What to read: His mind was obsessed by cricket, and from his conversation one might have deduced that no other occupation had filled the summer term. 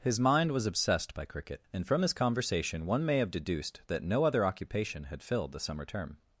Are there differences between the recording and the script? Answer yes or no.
yes